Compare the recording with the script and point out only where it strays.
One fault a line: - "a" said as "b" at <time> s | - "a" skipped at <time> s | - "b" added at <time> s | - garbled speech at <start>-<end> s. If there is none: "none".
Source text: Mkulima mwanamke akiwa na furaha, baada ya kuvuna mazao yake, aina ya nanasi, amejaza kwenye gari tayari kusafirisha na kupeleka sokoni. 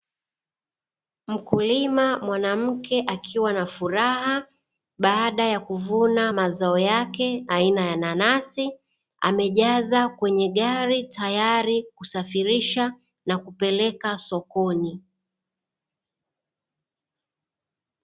none